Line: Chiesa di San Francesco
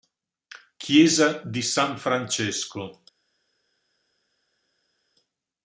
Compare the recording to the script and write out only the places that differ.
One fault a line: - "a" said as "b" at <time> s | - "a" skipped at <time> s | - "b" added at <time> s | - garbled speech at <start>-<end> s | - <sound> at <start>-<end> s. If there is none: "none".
none